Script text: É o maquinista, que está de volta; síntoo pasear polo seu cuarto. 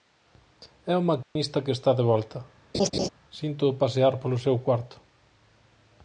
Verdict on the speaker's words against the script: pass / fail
pass